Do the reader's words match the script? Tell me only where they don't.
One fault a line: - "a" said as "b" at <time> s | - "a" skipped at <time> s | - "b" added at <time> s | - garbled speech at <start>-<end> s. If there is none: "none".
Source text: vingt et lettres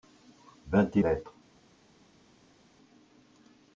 none